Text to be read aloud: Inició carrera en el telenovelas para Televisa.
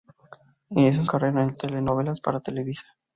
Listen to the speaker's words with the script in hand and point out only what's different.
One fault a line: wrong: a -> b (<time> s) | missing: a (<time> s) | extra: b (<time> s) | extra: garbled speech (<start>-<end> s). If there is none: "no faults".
no faults